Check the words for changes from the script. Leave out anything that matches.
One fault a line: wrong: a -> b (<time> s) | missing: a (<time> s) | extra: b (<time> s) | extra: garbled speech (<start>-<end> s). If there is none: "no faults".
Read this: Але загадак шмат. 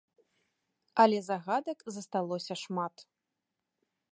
extra: засталося (1.9 s)